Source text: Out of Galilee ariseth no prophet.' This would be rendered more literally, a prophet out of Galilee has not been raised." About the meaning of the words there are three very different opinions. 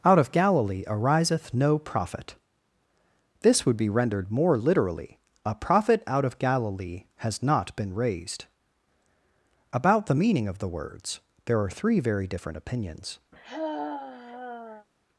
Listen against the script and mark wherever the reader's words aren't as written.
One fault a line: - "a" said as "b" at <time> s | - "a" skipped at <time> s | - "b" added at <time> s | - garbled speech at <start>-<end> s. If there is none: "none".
none